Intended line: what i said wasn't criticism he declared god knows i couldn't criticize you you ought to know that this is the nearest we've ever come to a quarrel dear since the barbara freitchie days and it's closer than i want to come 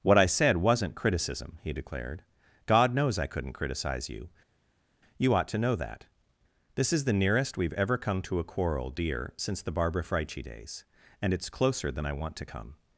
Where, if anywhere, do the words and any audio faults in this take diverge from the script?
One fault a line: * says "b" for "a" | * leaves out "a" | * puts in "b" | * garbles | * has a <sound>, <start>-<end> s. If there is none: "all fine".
all fine